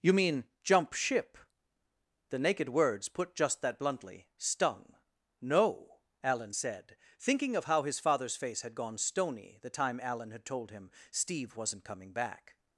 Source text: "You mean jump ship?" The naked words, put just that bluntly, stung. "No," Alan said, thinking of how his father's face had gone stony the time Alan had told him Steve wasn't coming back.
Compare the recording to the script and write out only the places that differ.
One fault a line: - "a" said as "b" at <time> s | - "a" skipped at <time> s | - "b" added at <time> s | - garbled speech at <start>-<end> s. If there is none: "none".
none